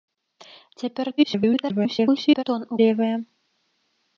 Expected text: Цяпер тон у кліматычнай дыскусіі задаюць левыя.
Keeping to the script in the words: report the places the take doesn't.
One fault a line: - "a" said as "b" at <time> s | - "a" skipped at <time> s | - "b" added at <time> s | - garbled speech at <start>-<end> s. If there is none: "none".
- garbled speech at 1.2-2.4 s
- "кліматычнай дыскусіі задаюць" skipped at 2.8 s